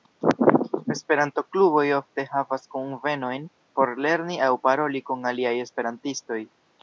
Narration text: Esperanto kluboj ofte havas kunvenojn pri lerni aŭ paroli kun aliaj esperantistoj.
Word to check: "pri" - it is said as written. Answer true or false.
false